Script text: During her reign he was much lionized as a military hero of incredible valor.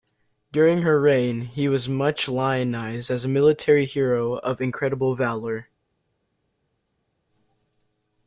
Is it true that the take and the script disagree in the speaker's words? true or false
false